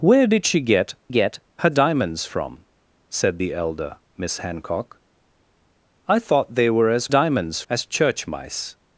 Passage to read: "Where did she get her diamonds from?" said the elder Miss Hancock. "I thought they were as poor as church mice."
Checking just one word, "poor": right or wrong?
wrong